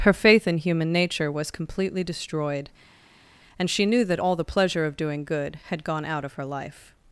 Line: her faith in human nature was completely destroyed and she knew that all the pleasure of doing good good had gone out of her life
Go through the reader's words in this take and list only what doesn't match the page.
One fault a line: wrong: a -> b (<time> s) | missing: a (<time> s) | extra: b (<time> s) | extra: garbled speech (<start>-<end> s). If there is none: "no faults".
missing: good (5.6 s)